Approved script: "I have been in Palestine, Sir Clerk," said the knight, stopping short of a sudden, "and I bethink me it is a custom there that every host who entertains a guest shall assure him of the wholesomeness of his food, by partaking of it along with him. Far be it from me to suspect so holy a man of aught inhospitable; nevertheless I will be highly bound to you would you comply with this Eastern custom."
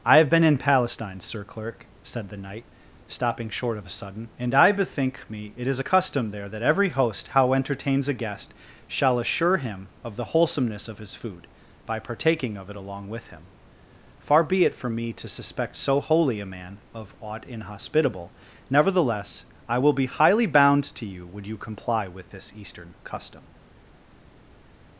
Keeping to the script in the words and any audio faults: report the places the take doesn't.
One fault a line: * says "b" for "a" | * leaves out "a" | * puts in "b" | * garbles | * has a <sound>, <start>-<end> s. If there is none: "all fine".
* says "how" for "who"